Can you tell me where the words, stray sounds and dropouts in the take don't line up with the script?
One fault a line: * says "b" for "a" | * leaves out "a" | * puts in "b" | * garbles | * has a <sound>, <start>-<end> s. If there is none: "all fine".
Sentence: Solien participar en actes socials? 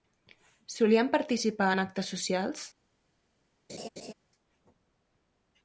* has a laugh, 3.7-4.1 s